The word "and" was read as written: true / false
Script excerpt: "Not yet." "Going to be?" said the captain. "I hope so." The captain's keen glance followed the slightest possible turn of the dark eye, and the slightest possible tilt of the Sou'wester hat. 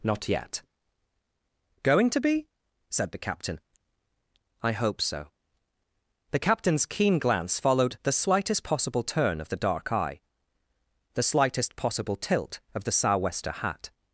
false